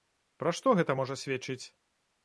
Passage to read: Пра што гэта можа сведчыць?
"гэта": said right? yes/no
yes